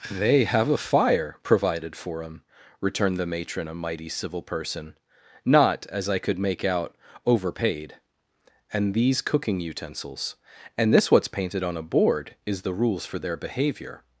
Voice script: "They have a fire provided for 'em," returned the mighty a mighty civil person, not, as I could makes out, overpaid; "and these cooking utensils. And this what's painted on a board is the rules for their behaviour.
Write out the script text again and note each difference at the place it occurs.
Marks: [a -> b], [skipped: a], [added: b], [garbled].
"They have a fire provided for 'em," returned the [mighty -> matron] a mighty civil person, not, as I could [makes -> make] out, overpaid; "and these cooking utensils. And this what's painted on a board is the rules for their behaviour.